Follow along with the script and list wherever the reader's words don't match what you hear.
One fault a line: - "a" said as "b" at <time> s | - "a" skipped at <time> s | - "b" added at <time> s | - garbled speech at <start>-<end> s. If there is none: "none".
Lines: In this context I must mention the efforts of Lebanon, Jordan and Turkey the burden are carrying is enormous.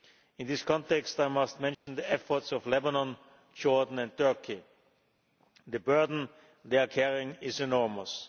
- "they" added at 6.7 s